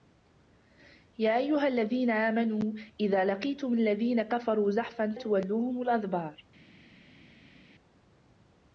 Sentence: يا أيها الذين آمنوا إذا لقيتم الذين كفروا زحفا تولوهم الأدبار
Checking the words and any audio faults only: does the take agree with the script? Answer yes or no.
yes